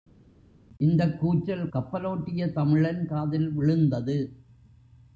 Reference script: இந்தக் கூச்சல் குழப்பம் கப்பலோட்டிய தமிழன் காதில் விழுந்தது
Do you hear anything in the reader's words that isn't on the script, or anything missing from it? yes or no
yes